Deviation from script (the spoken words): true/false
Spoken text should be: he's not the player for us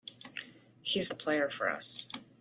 true